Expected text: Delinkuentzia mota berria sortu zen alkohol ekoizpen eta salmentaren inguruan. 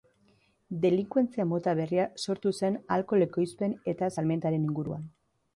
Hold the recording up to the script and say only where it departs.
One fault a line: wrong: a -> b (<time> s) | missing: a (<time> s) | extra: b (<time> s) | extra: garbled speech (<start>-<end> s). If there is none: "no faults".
no faults